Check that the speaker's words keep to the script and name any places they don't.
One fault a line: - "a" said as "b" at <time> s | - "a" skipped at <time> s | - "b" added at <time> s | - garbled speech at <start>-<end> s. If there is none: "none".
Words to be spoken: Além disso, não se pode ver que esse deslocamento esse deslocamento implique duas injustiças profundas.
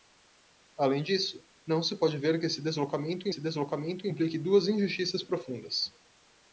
none